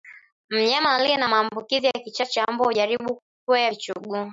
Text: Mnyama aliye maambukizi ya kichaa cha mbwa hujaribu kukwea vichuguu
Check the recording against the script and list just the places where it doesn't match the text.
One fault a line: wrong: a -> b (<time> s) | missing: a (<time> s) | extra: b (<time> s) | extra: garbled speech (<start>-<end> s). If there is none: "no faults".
extra: na (1.2 s)